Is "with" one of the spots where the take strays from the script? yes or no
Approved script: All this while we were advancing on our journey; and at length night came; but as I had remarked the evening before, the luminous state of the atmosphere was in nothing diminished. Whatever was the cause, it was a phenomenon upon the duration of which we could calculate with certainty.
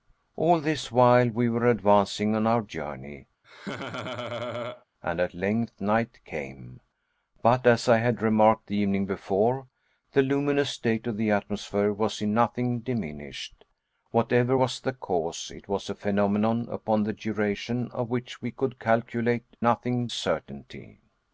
yes